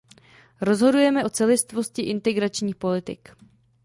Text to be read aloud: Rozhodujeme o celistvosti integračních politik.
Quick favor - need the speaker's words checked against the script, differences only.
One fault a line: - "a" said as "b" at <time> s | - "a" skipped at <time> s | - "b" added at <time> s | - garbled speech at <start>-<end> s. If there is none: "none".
none